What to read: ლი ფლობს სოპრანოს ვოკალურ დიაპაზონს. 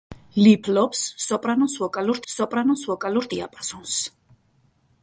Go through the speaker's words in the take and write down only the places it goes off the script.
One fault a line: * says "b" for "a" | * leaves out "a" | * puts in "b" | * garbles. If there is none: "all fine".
* puts in "სოპრანოს ვოკალურ"